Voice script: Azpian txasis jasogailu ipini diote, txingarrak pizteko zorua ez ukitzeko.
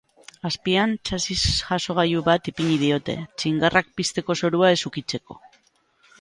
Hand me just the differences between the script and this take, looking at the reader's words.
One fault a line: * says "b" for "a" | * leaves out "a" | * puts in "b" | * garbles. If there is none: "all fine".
* puts in "bat"